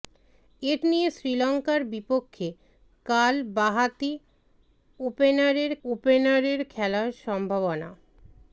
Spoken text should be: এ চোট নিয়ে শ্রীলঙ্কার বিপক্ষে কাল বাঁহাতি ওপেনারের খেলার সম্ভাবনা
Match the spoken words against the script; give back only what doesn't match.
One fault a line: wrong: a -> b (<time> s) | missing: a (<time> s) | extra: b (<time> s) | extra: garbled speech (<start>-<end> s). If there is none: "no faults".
missing: চোট (0.7 s)
extra: ওপেনারের (5.8 s)